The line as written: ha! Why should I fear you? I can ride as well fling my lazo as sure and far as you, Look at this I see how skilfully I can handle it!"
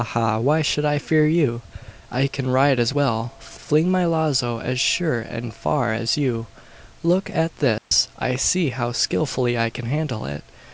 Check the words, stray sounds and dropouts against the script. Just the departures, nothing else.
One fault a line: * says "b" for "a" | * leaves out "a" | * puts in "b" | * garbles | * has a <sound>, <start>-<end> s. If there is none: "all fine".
* has a dropout, 7.8-7.9 s